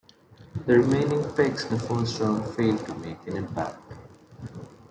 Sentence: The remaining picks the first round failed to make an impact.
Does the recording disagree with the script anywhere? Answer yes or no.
no